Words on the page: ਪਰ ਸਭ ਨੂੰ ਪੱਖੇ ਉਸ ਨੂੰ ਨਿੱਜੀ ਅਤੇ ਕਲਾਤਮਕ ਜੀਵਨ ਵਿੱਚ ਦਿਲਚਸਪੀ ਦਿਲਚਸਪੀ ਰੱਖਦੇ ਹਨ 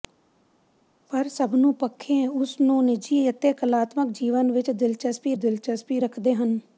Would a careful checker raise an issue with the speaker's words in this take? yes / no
no